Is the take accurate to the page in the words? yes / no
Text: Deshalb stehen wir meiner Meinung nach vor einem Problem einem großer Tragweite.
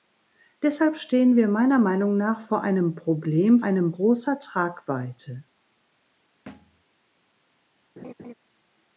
yes